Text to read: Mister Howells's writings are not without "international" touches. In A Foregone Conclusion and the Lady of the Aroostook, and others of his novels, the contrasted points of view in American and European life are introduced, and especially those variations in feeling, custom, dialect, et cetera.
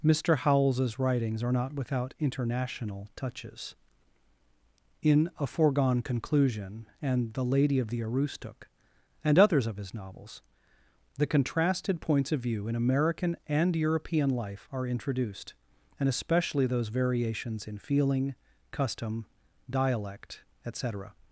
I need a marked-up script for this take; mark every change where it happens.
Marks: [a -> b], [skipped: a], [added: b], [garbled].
Mister Howells's writings are not without "international" touches. In A Foregone Conclusion and the Lady of the Aroostook, and others of his novels, the contrasted points of view in American and European life are introduced, and especially those variations in feeling, custom, dialect, et cetera.